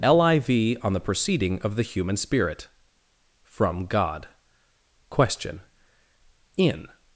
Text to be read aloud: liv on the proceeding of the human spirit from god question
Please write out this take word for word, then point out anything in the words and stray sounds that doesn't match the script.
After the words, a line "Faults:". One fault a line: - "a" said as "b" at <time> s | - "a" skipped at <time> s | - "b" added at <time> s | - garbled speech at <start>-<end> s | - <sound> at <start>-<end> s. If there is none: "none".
liv on the proceeding of the human spirit from god question in
Faults:
- "in" added at 6.6 s